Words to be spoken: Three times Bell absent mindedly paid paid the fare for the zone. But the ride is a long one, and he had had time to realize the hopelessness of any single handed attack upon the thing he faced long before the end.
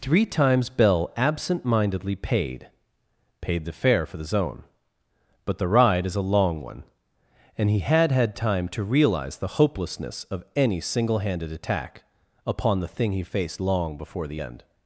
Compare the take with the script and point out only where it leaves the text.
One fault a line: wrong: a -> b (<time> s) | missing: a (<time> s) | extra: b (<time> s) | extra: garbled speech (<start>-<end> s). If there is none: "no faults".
no faults